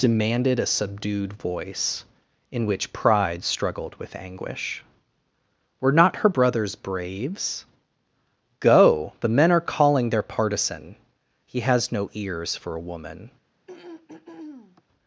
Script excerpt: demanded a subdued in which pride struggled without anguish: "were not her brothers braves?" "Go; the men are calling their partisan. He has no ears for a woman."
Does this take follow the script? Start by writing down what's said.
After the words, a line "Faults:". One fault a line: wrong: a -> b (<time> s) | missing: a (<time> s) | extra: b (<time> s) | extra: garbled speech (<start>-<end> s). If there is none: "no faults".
demanded a subdued voice, in which pride struggled with anguish: "were not her brothers braves?" "Go; the men are calling their partisan. He has no ears for a woman."
Faults:
extra: voice (1.3 s)
wrong: without -> with (4.0 s)